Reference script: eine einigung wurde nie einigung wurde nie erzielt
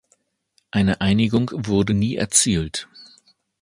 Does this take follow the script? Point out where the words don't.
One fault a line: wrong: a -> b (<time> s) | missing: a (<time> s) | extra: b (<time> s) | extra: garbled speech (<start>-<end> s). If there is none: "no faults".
missing: einigung wurde nie (2.2 s)